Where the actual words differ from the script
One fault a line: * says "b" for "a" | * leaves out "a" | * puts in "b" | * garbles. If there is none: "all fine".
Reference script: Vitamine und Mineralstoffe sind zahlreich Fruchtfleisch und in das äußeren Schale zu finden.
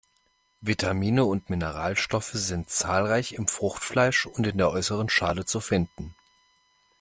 * puts in "im"
* says "der" for "das"